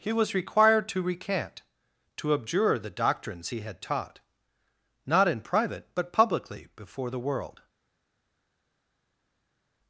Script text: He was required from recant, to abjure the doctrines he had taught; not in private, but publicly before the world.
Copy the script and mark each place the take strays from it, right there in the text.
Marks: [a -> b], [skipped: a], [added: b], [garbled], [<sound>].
He was required [from -> to] recant, to abjure the doctrines he had taught; not in private, but publicly before the world.